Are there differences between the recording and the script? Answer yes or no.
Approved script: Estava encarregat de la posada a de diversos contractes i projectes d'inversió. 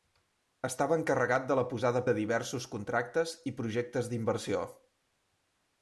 no